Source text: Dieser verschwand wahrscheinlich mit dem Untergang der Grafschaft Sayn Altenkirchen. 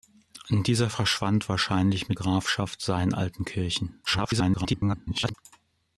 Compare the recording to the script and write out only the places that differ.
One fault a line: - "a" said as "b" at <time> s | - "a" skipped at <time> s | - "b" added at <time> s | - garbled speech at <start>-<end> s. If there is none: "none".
- "dem Untergang der" skipped at 2.2 s
- garbled speech at 4.1-5.3 s